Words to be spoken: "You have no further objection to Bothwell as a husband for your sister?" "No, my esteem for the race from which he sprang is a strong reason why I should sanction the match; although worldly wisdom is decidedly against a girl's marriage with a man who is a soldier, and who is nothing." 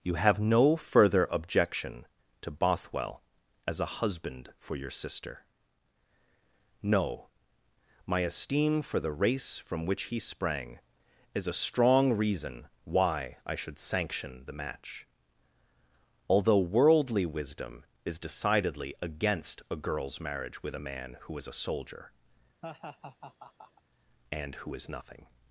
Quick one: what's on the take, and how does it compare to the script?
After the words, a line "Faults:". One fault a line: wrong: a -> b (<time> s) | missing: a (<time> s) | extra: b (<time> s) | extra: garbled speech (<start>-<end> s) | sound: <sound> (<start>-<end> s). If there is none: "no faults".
"You have no further objection to Bothwell as a husband for your sister?" "No, my esteem for the race from which he sprang is a strong reason why I should sanction the match; although worldly wisdom is decidedly against a girl's marriage with a man who is a soldier, and who is nothing."
Faults:
sound: laugh (22.6-23.8 s)